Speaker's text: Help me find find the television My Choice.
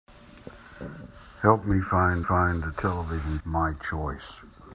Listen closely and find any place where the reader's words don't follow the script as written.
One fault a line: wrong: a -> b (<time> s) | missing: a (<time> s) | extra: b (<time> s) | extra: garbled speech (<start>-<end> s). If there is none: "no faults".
no faults